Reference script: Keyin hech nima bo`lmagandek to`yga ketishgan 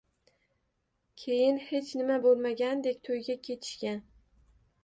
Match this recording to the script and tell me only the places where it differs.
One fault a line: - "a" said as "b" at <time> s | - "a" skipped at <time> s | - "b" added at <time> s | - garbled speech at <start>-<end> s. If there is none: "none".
none